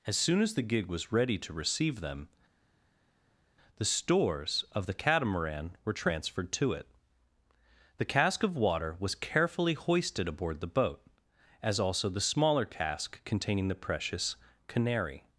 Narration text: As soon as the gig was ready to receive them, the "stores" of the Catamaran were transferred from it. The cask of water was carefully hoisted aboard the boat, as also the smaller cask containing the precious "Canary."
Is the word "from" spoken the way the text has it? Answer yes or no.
no